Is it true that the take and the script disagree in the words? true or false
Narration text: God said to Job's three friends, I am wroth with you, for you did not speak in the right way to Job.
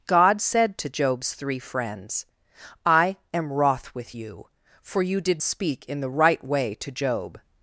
true